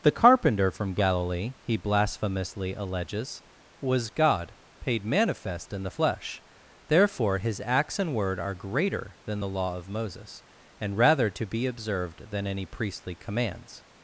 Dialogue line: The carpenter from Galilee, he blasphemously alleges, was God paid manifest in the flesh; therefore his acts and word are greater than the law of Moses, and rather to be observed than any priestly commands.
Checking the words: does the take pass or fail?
pass